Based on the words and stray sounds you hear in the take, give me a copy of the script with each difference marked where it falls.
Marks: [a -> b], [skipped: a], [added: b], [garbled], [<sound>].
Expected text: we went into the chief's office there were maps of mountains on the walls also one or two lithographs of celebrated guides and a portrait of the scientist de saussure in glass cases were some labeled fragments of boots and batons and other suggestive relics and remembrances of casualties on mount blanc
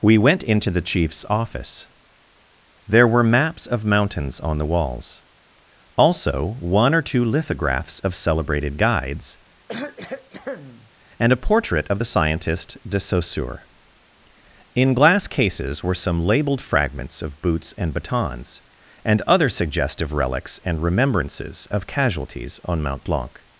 we went into the chief's office there were maps of mountains on the walls also one or two lithographs of celebrated guides [cough] and a portrait of the scientist de saussure in glass cases were some labeled fragments of boots and batons and other suggestive relics and remembrances of casualties on mount blanc